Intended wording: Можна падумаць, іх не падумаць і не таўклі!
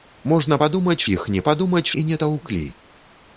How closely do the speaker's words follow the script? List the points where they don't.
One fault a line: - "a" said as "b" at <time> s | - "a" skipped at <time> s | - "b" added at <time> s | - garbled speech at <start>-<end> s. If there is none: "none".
none